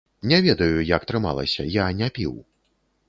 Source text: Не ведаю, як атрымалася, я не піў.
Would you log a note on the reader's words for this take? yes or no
no